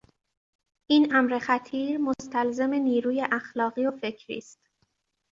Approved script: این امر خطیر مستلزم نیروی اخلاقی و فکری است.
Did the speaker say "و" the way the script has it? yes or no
yes